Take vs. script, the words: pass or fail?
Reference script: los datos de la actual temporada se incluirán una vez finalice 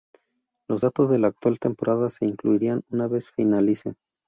pass